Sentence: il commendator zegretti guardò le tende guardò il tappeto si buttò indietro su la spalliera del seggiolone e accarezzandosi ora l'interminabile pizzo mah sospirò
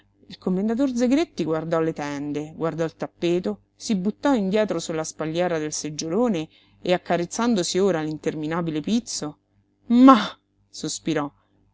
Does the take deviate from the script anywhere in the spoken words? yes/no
no